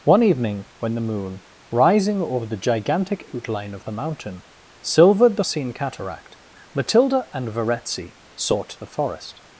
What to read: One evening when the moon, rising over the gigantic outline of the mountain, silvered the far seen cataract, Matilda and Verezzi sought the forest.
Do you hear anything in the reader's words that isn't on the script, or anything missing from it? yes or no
yes